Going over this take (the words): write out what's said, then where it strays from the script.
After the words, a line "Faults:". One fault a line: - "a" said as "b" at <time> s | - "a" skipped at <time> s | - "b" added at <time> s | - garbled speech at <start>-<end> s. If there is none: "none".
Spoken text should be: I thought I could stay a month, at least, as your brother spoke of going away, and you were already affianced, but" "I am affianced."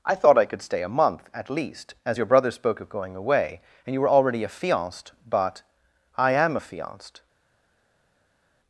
I thought I could stay a month, at least, as your brother spoke of going away, and you were already affianced, but" "I am affianced."
Faults:
none